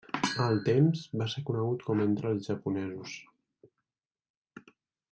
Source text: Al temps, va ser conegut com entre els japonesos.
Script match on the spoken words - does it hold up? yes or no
yes